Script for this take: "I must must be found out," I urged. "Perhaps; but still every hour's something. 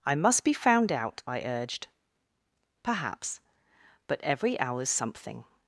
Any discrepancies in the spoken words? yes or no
yes